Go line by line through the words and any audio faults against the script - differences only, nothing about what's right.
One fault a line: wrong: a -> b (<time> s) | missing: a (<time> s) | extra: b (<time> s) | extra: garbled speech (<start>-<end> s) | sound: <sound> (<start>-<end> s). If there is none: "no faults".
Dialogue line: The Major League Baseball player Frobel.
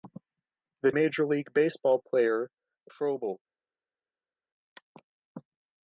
no faults